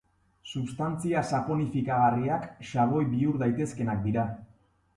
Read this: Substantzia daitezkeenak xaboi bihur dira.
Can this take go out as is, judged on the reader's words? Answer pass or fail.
fail